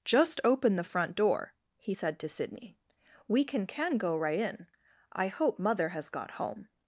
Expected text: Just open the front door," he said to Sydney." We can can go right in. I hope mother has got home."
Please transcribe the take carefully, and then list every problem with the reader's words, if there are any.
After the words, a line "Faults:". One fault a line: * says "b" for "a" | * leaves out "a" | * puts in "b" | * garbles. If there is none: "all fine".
Just open the front door," he said to Sydney." We can can go right in. I hope mother has got home."
Faults:
all fine